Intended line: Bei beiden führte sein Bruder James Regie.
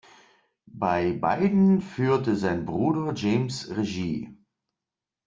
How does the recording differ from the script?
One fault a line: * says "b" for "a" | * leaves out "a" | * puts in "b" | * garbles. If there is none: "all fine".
all fine